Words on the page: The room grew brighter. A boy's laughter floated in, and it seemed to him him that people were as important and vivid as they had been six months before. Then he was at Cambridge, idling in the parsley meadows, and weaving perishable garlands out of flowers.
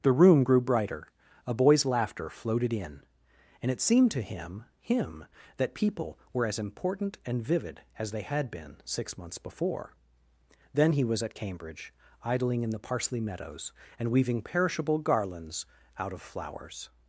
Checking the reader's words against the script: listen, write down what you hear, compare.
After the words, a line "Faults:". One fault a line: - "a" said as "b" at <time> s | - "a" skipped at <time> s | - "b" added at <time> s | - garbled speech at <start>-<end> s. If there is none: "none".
The room grew brighter. A boy's laughter floated in, and it seemed to him him that people were as important and vivid as they had been six months before. Then he was at Cambridge, idling in the parsley meadows, and weaving perishable garlands out of flowers.
Faults:
none